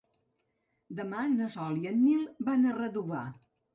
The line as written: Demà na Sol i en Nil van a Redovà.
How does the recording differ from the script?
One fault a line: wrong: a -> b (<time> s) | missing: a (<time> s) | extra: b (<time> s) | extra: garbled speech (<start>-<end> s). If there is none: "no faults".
no faults